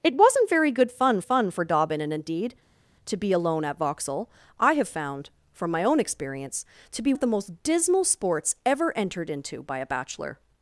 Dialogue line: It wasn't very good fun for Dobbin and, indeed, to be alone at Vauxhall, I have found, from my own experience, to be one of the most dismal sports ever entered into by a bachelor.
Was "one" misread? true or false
true